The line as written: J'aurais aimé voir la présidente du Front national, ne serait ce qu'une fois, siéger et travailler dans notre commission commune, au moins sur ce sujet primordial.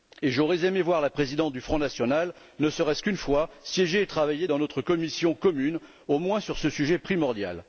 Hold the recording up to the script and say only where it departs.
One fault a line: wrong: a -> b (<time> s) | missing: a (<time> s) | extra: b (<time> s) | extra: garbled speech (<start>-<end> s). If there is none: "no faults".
no faults